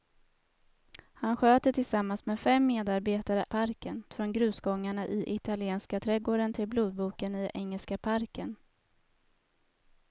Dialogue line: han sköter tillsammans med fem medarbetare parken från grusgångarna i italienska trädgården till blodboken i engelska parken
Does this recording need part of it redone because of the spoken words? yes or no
no